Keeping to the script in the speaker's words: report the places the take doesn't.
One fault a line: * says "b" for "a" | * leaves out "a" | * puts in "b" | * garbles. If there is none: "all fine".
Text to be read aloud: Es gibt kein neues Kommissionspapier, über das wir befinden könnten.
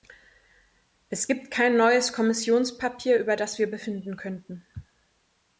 all fine